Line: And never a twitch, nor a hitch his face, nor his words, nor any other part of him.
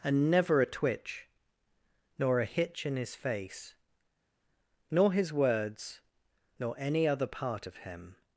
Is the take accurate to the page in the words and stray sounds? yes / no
no